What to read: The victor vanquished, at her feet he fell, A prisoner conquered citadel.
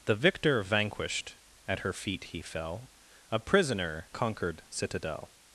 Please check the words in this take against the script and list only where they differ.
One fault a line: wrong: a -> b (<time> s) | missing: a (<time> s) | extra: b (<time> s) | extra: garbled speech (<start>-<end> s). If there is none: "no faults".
no faults